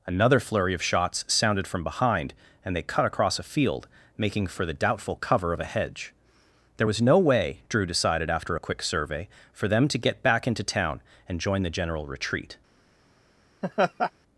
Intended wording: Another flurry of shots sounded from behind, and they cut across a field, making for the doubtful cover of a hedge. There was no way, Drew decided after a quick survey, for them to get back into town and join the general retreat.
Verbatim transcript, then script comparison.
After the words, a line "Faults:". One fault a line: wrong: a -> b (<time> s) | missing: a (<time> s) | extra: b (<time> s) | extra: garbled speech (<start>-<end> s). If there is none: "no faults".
Another flurry of shots sounded from behind, and they cut across a field, making for the doubtful cover of a hedge. There was no way, Drew decided after a quick survey, for them to get back into town and join the general retreat.
Faults:
no faults